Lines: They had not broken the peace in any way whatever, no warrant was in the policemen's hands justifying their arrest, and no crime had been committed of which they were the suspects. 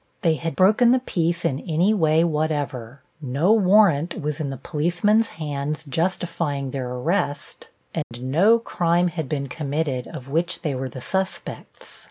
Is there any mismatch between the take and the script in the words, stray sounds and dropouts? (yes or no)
yes